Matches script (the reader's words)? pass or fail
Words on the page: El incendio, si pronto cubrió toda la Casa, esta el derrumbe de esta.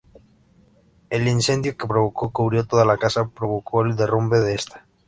fail